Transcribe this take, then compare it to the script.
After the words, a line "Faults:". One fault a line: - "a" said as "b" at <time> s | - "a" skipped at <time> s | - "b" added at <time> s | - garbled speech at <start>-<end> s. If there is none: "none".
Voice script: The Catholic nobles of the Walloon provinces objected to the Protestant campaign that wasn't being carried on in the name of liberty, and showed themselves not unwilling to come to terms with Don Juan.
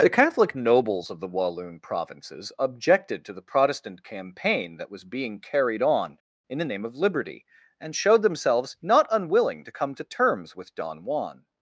The Catholic nobles of the Walloon provinces objected to the Protestant campaign that was being carried on in the name of liberty, and showed themselves not unwilling to come to terms with Don Juan.
Faults:
- "wasn't" said as "was" at 4.9 s